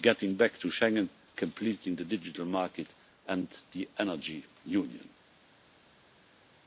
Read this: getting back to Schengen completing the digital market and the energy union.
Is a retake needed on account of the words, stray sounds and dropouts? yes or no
no